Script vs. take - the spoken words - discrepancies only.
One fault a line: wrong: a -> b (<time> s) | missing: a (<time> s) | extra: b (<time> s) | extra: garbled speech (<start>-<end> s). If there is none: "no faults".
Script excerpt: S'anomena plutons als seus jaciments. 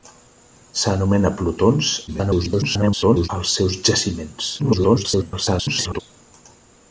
extra: garbled speech (2.1-3.3 s)
extra: garbled speech (4.6-6.0 s)